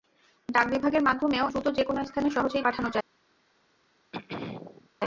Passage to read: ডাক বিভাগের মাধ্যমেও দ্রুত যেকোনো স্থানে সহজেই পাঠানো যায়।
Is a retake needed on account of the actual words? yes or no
no